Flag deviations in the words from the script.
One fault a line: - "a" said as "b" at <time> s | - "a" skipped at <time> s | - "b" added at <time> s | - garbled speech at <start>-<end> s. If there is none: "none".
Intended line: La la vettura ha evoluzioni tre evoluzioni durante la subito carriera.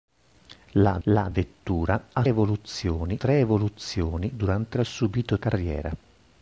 none